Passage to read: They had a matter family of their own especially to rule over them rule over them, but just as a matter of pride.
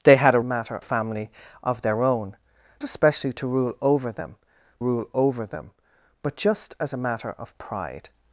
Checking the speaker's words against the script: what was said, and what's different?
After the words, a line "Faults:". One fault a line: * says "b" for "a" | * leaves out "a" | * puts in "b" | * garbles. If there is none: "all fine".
They had a matter family of their own especially to rule over them rule over them, but just as a matter of pride.
Faults:
all fine